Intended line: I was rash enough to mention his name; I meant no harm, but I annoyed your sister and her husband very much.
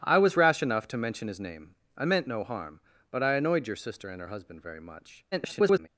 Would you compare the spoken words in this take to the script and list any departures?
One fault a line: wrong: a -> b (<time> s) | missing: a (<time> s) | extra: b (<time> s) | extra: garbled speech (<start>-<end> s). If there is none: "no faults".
extra: garbled speech (5.3-5.9 s)